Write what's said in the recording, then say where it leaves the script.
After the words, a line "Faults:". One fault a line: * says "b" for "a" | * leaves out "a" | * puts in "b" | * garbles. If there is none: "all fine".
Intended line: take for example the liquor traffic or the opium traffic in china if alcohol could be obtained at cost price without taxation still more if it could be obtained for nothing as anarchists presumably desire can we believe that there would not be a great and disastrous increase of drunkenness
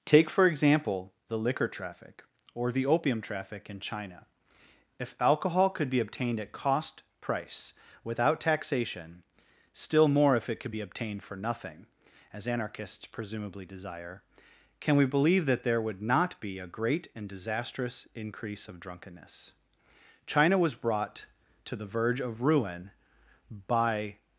take for example the liquor traffic or the opium traffic in china if alcohol could be obtained at cost price without taxation still more if it could be obtained for nothing as anarchists presumably desire can we believe that there would not be a great and disastrous increase of drunkenness china was brought to the verge of ruin by
Faults:
* puts in "china was brought to the verge of ruin by"